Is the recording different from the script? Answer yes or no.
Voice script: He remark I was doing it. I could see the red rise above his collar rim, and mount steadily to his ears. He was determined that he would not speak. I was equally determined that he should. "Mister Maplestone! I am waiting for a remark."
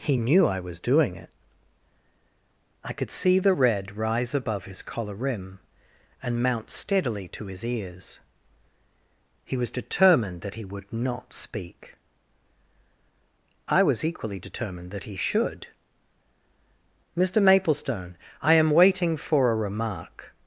yes